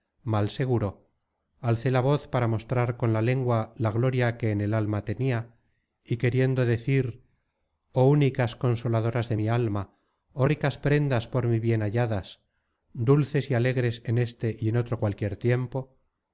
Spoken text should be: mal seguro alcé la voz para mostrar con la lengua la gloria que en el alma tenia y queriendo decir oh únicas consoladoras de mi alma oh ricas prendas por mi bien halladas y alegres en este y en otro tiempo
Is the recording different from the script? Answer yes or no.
yes